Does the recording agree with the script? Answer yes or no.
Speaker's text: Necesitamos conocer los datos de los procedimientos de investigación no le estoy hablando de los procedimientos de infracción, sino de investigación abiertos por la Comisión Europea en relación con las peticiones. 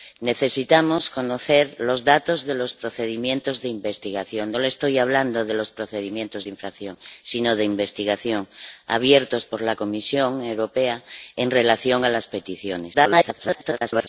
no